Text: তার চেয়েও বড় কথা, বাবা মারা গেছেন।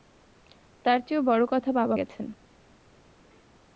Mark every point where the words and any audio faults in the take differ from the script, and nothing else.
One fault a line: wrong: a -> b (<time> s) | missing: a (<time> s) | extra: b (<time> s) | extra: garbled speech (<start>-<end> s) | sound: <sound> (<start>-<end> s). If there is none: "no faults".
missing: মারা (1.9 s)